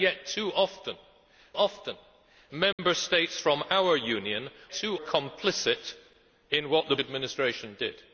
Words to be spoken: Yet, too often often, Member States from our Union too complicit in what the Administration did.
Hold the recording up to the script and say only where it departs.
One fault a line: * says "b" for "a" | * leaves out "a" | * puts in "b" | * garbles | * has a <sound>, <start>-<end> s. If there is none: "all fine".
* has a dropout, 2.7-2.8 s